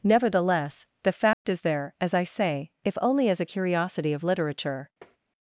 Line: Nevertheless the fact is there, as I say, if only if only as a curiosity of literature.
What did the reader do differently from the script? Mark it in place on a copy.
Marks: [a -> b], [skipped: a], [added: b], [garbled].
Nevertheless the fact is there, as I say, if only [skipped: if only] as a curiosity of literature.